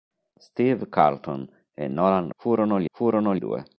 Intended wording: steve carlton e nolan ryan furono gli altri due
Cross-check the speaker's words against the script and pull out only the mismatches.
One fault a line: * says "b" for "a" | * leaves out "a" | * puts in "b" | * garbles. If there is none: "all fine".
* leaves out "ryan"
* says "furono" for "altri"